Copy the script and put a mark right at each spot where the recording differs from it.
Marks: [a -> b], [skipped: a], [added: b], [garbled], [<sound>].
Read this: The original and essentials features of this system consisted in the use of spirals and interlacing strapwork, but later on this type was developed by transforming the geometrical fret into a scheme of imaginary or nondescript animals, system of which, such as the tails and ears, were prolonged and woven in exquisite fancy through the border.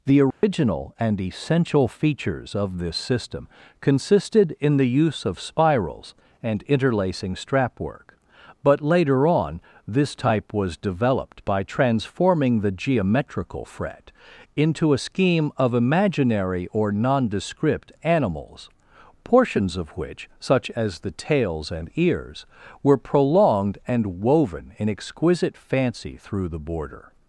The original [dropout] and [essentials -> essential] features of this system consisted in the use of spirals and interlacing strapwork, but later on this type was developed by transforming the geometrical fret into a scheme of imaginary or nondescript animals, [system -> portions] of which, such as the tails and ears, were prolonged and woven in exquisite fancy through the border.